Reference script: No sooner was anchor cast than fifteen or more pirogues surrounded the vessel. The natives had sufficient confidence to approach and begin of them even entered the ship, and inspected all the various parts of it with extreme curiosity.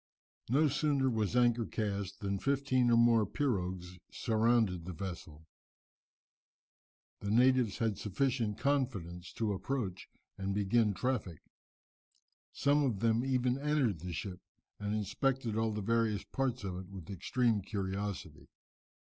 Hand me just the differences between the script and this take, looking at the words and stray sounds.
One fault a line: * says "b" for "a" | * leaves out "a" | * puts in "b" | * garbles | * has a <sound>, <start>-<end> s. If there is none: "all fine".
* puts in "traffic Some"